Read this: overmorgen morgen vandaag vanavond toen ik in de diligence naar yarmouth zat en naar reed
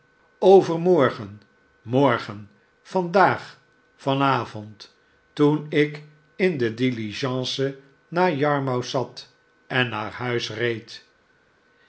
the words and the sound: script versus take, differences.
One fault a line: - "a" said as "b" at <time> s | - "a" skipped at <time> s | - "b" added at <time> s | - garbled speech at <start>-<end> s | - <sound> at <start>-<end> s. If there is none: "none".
- "huis" added at 10.1 s